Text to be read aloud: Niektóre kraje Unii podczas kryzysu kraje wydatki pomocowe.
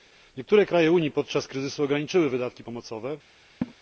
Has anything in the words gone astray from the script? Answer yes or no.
yes